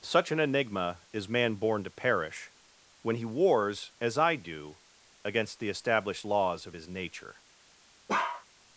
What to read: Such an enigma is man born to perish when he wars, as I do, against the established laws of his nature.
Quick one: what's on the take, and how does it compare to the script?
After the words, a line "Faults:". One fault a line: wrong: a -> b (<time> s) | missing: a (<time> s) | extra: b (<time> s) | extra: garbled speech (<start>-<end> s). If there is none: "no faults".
Such an enigma is man born to perish when he wars, as I do, against the established laws of his nature.
Faults:
no faults